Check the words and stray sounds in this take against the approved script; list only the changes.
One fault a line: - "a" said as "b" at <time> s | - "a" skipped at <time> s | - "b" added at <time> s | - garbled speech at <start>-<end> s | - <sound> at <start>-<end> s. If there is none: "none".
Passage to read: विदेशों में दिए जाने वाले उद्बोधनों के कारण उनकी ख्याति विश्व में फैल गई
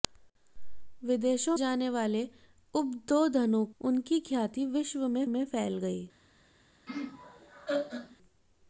- "में दिए" skipped at 1.6 s
- "के कारण" skipped at 3.6 s
- "में" added at 5.3 s
- laugh at 6.9-8.2 s